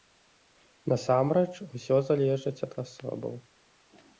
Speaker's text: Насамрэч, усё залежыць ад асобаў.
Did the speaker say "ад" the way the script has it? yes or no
yes